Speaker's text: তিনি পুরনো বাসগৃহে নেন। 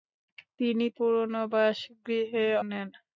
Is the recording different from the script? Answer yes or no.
no